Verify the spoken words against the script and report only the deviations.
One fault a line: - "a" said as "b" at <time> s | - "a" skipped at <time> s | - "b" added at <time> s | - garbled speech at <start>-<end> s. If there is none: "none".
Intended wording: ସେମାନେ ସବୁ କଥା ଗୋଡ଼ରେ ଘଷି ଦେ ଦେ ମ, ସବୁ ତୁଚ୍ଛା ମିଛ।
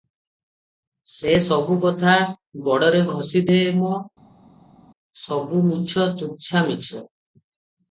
- "ସେମାନେ" said as "ସେ" at 1.1 s
- "ଦେ" skipped at 3.6 s
- "ମିଛ" added at 5.7 s